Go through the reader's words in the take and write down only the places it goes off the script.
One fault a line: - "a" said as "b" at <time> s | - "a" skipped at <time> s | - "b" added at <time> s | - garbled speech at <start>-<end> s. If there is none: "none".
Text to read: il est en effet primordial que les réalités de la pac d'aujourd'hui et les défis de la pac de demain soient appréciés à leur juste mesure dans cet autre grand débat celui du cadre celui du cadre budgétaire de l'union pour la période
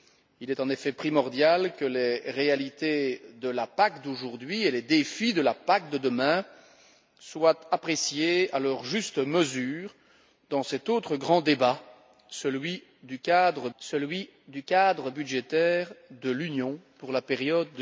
none